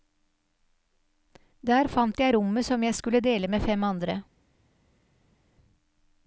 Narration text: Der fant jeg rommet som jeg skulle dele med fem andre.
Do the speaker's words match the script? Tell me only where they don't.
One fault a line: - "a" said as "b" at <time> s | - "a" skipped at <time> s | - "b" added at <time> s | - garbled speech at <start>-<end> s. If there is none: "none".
none